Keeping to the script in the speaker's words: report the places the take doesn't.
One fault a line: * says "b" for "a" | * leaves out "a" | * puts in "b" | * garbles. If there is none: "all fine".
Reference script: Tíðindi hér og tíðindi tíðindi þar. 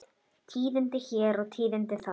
* leaves out "tíðindi"